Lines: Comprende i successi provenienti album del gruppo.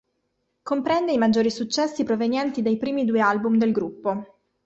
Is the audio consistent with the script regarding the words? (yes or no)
no